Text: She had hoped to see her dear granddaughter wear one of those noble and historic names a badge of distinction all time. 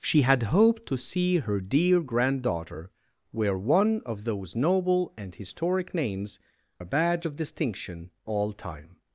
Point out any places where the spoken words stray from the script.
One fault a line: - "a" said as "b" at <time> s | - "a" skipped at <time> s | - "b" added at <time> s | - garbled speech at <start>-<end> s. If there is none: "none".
none